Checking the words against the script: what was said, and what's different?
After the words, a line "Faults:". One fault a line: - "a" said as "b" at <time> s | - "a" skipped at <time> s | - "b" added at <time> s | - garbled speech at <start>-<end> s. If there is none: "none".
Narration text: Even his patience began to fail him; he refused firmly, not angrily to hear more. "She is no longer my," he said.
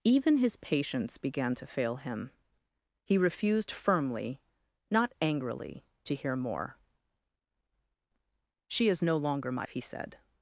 Even his patience began to fail him; he refused firmly, not angrily to hear more. "She is no longer my," he said.
Faults:
none